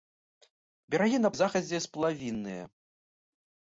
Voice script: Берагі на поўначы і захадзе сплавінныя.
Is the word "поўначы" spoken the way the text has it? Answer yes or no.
no